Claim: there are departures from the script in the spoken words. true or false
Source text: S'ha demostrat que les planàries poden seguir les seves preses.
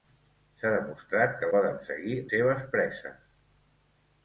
true